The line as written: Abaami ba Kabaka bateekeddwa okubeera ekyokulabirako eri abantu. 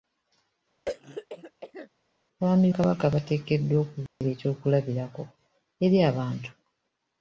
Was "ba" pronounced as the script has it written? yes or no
no